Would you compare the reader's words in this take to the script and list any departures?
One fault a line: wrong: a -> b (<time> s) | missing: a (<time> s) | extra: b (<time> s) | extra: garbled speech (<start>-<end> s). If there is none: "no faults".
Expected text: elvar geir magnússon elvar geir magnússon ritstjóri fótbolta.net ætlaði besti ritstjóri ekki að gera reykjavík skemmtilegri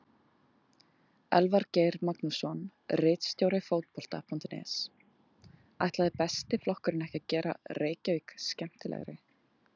missing: elvar geir magnússon (2.6 s)
wrong: ritstjóri -> flokkurinn (6.7 s)